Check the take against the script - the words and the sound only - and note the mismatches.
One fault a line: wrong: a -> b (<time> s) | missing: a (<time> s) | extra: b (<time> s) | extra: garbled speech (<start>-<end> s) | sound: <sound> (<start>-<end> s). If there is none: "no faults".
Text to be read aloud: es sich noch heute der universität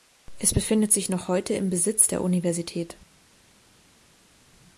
extra: befindet (0.5 s)
extra: im besitz (1.5 s)